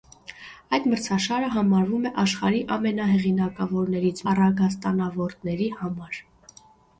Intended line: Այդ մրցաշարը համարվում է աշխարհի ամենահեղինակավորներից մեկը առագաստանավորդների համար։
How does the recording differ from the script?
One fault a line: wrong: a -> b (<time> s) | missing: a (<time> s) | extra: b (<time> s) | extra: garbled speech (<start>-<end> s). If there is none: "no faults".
missing: մեկը (4.2 s)